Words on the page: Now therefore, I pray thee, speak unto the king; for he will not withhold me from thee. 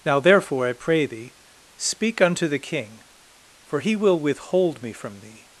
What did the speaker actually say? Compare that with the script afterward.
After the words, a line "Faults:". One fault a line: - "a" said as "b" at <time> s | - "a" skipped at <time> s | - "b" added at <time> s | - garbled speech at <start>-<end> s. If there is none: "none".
Now therefore, I pray thee, speak unto the king; for he will withhold me from thee.
Faults:
- "not" skipped at 4.2 s